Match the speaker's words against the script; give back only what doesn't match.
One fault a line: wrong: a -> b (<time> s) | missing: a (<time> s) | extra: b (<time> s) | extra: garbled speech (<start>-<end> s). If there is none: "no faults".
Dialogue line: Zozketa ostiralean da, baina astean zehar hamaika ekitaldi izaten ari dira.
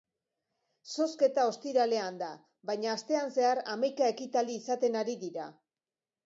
no faults